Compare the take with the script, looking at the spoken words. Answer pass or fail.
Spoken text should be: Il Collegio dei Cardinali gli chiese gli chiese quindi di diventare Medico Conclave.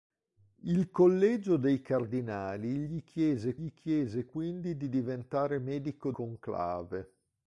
pass